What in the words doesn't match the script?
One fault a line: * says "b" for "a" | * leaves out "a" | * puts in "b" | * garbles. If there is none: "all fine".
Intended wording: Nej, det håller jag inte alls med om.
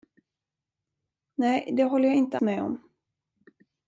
* leaves out "alls"